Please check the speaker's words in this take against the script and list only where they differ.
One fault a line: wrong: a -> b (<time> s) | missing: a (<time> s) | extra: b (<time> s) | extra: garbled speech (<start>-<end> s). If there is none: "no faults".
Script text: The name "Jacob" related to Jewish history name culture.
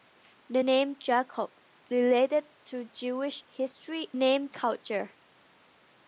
no faults